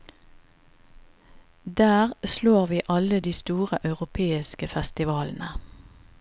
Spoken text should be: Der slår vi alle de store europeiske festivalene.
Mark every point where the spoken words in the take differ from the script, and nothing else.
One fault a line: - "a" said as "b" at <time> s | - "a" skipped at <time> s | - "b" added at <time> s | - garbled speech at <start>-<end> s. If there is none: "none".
none